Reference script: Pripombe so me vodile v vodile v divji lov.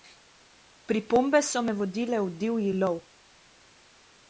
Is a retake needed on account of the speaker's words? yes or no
yes